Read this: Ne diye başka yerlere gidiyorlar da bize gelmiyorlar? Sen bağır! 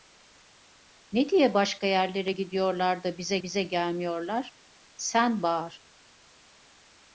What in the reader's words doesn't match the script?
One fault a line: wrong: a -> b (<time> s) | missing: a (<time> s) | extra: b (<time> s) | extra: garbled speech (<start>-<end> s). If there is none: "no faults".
extra: bize (3.4 s)